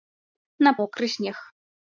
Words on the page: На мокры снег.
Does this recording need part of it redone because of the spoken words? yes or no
no